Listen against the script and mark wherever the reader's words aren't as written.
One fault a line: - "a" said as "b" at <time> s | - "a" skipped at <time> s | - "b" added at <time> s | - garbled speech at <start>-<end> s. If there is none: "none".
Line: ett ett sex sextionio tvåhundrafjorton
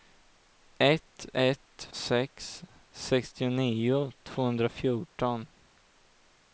none